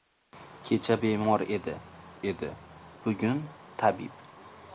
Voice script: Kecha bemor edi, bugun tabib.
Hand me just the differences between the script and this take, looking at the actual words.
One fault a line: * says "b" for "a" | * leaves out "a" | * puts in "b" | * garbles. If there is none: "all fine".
* puts in "edi"